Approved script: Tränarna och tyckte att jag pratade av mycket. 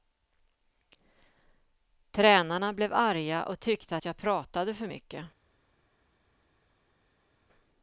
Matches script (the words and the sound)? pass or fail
fail